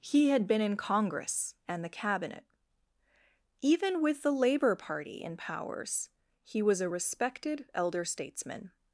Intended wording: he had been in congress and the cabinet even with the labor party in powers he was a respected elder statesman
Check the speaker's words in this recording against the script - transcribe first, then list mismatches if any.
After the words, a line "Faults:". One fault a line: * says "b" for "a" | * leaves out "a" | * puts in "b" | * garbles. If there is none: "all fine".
he had been in congress and the cabinet even with the labor party in powers he was a respected elder statesman
Faults:
all fine